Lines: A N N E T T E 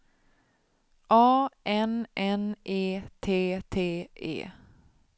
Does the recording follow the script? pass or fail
pass